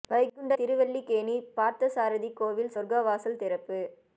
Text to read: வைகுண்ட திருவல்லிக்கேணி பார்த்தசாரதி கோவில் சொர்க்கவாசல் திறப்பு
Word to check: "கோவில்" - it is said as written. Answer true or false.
true